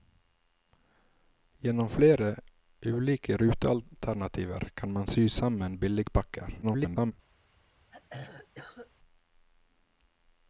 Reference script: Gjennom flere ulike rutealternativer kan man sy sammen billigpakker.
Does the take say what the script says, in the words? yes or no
no